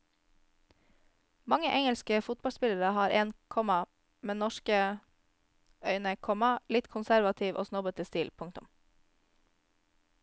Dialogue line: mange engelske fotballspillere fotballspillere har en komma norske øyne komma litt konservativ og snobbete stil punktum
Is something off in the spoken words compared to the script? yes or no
yes